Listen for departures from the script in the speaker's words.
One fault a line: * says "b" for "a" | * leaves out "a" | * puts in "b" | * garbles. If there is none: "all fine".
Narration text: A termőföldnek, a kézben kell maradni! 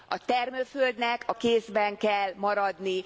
all fine